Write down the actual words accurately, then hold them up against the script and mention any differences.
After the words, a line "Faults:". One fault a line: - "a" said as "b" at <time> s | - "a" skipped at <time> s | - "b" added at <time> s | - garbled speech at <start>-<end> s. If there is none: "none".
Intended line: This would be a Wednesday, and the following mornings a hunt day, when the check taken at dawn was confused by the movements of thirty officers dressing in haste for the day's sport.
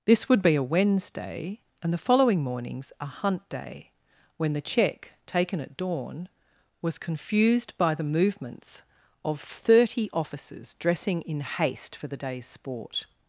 This would be a Wednesday, and the following mornings a hunt day, when the check taken at dawn was confused by the movements of thirty officers dressing in haste for the day's sport.
Faults:
none